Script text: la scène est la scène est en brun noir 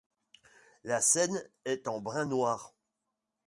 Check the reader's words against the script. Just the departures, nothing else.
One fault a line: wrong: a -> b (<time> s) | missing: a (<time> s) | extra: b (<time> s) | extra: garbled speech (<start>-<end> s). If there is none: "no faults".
missing: la scène est (1.9 s)